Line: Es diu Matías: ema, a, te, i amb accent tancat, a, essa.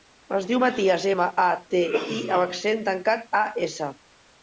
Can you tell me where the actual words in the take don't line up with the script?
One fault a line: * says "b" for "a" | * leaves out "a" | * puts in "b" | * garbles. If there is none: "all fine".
all fine